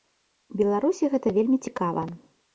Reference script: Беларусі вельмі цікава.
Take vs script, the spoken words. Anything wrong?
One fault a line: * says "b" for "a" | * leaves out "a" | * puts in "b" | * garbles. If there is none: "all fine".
* puts in "гэта"